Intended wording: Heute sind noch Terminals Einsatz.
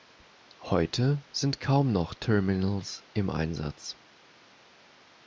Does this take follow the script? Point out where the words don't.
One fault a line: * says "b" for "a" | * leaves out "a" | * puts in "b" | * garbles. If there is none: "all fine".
* puts in "kaum"
* puts in "im"